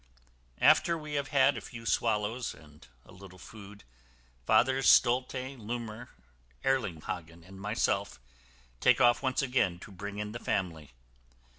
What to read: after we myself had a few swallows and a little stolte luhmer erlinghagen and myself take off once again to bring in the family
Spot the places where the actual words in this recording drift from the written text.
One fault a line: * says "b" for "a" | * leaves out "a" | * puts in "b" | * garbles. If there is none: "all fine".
* says "have" for "myself"
* puts in "food fathers"